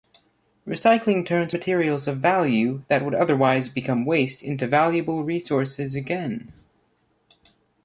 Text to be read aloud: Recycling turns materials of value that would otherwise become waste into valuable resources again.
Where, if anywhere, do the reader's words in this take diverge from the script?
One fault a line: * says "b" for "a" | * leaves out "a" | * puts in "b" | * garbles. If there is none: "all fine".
all fine